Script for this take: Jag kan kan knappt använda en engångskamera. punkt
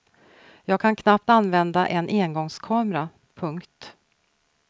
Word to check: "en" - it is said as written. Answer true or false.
true